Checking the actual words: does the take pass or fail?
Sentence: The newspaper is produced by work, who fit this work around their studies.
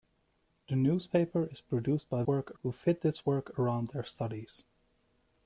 pass